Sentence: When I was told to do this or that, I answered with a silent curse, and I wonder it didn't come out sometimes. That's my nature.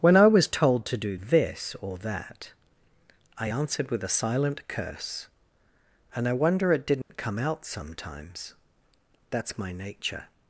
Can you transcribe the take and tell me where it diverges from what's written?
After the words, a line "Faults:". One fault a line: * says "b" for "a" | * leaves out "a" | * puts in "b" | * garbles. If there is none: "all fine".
When I was told to do this or that, I answered with a silent curse, and I wonder it didn't come out sometimes. That's my nature.
Faults:
all fine